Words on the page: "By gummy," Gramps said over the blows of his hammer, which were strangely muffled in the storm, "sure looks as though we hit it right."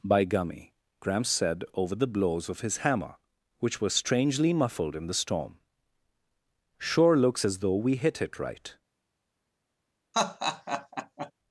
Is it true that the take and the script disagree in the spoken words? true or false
false